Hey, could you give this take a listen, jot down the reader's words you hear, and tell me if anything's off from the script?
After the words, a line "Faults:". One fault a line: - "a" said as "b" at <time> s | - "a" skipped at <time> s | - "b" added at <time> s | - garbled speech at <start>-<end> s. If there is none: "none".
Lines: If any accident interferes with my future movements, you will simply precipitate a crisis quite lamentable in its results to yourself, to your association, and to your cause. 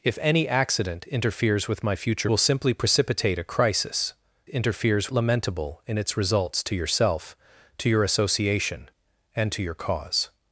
If any accident interferes with my future will simply precipitate a crisis interferes lamentable in its results to yourself, to your association, and to your cause.
Faults:
- "movements you" skipped at 2.3 s
- "quite" said as "interferes" at 4.5 s